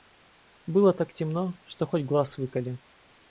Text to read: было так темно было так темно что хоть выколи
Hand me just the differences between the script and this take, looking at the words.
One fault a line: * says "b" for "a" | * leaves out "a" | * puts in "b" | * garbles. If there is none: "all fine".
* leaves out "было так темно"
* puts in "глаз"